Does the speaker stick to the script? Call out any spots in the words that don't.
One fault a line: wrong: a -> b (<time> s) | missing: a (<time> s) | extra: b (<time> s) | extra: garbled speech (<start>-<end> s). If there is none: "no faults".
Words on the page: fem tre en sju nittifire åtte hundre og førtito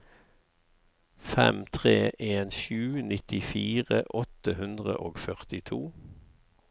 no faults